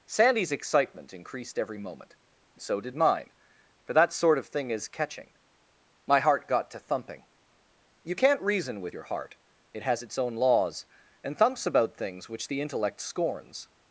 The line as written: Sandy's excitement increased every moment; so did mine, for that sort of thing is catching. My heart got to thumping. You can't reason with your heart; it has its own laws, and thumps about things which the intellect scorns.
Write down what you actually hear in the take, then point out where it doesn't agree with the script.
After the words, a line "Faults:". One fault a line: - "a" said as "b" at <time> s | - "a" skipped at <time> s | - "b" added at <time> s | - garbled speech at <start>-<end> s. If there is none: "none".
Sandy's excitement increased every moment; so did mine, for that sort of thing is catching. My heart got to thumping. You can't reason with your heart; it has its own laws, and thumps about things which the intellect scorns.
Faults:
none